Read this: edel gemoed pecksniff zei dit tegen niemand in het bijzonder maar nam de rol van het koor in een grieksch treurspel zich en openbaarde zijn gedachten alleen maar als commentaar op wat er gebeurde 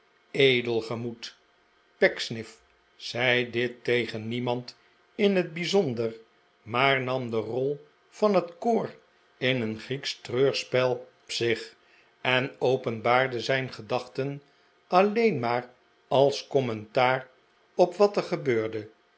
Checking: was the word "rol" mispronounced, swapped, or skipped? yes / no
no